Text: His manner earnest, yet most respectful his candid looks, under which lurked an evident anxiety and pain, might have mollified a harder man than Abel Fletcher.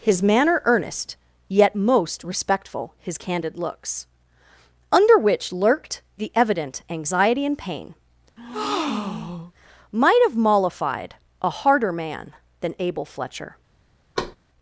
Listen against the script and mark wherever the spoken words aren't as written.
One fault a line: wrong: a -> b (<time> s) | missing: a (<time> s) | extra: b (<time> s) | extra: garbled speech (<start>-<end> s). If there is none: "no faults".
wrong: an -> the (6.2 s)